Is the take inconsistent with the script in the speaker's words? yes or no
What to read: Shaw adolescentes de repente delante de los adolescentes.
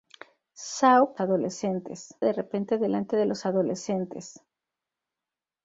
no